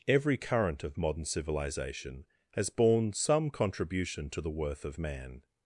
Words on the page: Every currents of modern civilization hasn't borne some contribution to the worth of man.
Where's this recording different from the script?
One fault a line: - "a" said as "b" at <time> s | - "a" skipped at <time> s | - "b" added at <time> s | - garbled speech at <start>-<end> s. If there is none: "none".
- "currents" said as "current" at 0.4 s
- "hasn't" said as "has" at 2.5 s